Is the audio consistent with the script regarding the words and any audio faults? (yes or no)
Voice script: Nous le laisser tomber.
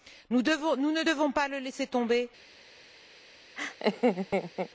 no